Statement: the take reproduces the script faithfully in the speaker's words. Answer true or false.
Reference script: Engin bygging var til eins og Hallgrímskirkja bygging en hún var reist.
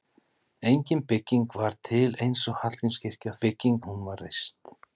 true